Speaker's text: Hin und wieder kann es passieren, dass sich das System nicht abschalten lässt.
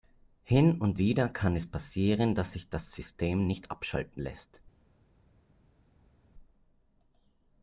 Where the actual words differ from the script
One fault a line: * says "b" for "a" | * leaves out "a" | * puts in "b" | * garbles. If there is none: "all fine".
all fine